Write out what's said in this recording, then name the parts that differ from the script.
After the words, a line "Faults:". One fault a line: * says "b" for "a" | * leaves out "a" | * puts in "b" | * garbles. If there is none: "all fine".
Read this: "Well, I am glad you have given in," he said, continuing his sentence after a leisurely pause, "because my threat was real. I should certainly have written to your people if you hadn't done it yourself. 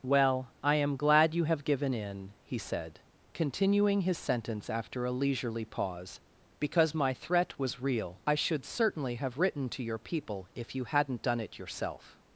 "Well, I am glad you have given in," he said, continuing his sentence after a leisurely pause, "because my threat was real. I should certainly have written to your people if you hadn't done it yourself.
Faults:
all fine